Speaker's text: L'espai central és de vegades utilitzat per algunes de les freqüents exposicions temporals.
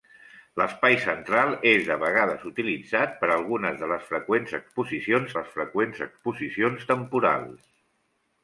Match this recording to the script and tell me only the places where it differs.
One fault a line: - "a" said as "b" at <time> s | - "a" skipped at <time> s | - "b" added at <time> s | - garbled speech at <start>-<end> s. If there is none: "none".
- "les freqüents exposicions" added at 5.4 s